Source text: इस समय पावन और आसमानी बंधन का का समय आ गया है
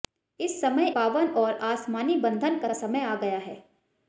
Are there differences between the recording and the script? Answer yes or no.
no